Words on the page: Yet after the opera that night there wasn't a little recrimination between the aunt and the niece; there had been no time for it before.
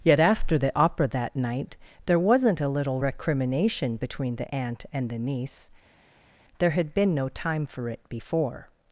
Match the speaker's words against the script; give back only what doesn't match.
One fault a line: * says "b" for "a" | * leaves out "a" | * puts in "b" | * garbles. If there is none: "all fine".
all fine